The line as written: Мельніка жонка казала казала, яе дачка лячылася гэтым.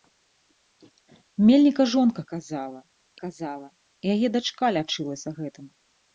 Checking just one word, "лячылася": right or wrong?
right